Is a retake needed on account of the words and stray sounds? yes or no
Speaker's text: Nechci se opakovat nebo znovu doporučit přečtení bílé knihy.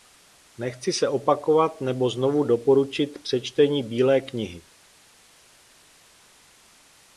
no